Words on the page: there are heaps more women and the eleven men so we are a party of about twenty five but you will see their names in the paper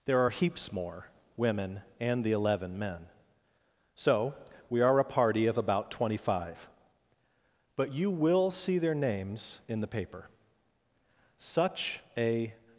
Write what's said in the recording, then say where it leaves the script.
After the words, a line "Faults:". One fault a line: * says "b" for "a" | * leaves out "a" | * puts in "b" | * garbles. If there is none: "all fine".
there are heaps more women and the eleven men so we are a party of about twenty five but you will see their names in the paper such a
Faults:
* puts in "such a"